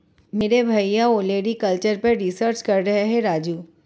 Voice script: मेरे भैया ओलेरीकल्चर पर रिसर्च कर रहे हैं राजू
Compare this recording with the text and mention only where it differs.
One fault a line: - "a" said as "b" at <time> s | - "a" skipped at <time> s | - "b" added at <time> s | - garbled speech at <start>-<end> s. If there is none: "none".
none